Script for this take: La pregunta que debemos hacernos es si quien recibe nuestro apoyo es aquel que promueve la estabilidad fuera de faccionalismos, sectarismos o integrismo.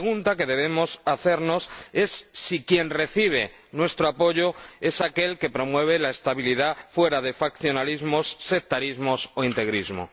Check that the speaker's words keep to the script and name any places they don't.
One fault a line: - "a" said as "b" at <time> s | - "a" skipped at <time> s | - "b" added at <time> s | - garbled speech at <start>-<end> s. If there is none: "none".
none